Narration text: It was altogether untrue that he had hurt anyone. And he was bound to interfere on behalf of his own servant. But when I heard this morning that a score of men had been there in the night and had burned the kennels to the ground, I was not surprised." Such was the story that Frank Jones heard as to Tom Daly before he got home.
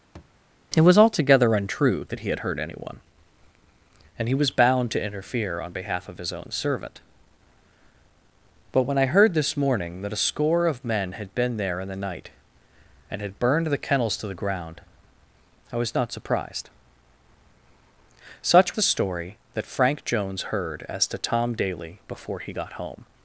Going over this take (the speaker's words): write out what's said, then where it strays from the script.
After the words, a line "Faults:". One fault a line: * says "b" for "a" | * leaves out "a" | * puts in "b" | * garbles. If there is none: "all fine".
It was altogether untrue that he had hurt anyone. And he was bound to interfere on behalf of his own servant. But when I heard this morning that a score of men had been there in the night and had burned the kennels to the ground, I was not surprised." Such the story that Frank Jones heard as to Tom Daly before he got home.
Faults:
* leaves out "was"